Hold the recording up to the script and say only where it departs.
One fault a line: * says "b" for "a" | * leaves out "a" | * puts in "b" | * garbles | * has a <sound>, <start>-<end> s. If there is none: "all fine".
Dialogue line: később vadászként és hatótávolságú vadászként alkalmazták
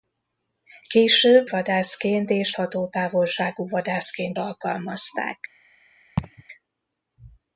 * has a laugh, 6.2-6.4 s